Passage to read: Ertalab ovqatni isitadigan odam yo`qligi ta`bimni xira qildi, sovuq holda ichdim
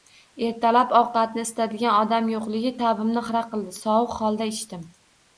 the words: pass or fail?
pass